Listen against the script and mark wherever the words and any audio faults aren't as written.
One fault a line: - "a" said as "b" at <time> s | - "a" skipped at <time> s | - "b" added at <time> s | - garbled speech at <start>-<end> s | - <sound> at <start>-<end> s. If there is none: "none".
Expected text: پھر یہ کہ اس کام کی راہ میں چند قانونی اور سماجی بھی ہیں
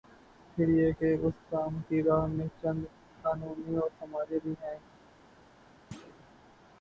- thud at 5.9-6.3 s